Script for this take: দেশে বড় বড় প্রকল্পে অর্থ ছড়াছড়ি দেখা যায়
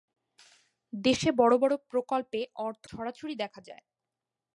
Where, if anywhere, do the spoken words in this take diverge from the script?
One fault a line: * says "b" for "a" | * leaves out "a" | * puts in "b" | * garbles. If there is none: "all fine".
all fine